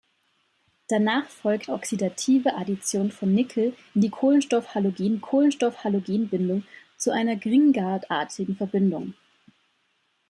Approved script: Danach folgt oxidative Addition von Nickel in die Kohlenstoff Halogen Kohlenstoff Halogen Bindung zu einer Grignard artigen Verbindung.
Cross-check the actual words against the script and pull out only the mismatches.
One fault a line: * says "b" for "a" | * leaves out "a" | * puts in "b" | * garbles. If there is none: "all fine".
all fine